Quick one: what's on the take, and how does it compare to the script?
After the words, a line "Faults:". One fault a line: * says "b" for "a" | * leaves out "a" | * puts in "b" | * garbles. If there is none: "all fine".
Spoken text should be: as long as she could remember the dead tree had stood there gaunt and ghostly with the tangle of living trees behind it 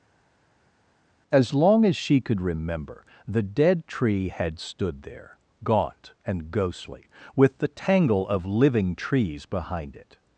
as long as she could remember the dead tree had stood there gaunt and ghostly with the tangle of living trees behind it
Faults:
all fine